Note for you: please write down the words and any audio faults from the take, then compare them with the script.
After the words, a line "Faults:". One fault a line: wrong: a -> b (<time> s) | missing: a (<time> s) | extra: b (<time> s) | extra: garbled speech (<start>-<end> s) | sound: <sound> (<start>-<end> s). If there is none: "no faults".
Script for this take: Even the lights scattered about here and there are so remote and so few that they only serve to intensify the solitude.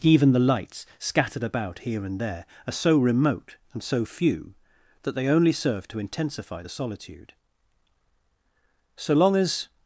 Even the lights scattered about here and there are so remote and so few that they only serve to intensify the solitude. So long as
Faults:
extra: So long as (8.9 s)